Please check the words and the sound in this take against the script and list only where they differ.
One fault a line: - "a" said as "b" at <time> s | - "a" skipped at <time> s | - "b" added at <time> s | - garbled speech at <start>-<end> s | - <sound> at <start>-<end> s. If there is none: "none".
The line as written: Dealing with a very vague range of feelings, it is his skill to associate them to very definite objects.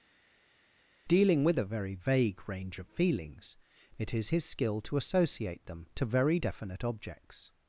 none